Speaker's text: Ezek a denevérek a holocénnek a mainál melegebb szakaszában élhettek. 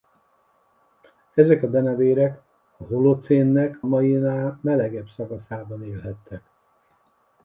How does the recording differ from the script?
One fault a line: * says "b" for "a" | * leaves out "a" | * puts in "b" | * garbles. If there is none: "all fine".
* leaves out "a"